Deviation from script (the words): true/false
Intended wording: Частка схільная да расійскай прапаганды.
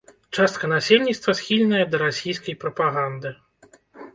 true